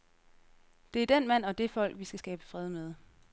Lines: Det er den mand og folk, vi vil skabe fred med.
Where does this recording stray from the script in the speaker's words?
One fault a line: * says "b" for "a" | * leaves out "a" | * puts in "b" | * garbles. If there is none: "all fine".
* puts in "det"
* says "skal" for "vil"